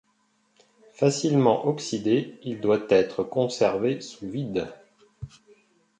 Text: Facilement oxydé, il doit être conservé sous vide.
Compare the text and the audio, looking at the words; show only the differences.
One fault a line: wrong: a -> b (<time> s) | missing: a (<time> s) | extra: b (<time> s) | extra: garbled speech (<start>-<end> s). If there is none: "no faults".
no faults